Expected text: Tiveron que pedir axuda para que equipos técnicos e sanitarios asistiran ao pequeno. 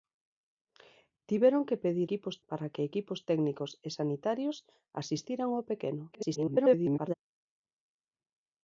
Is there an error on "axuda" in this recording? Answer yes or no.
yes